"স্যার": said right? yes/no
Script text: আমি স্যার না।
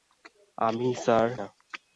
yes